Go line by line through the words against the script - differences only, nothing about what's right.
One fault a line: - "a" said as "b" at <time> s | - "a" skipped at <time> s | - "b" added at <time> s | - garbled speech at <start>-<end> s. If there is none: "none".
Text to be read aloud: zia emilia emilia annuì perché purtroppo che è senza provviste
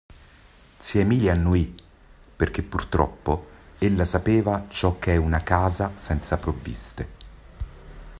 - "emilia" skipped at 1.3 s
- "ella sapeva ciò" added at 3.8 s
- "una casa" added at 5.2 s